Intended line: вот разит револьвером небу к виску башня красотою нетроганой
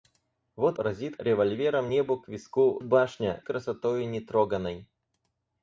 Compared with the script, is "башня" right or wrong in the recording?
right